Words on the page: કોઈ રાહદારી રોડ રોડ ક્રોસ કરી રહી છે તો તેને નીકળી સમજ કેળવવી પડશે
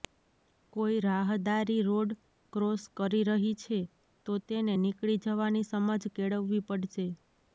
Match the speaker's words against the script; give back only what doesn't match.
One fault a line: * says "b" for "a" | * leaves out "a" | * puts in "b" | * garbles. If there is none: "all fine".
* leaves out "રોડ"
* puts in "જવાની"